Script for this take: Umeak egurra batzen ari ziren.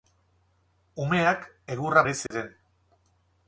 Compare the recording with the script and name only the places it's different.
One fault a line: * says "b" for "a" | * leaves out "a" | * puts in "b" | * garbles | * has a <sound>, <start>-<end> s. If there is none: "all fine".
* leaves out "batzen"
* has a dropout, 2.3-2.3 s